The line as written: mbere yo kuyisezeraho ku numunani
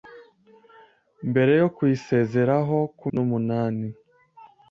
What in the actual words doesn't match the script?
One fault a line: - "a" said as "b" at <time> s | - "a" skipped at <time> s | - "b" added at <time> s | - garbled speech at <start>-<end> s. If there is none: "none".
none